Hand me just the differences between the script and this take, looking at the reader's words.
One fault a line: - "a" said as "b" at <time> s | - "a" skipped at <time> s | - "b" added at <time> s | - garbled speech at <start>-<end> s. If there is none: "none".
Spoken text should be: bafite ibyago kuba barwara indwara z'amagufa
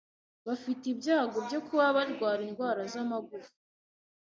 - "byo" added at 1.5 s